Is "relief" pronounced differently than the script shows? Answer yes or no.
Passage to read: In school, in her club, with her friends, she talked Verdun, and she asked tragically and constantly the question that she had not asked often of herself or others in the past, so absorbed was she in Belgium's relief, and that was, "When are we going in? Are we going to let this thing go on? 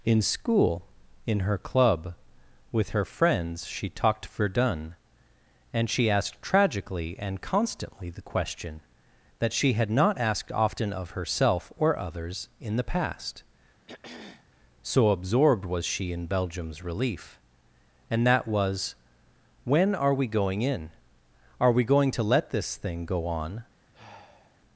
no